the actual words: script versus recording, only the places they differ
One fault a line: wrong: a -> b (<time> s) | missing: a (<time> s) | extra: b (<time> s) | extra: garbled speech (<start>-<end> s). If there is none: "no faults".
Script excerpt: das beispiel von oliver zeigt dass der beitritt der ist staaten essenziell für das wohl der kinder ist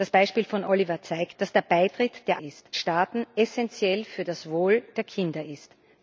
no faults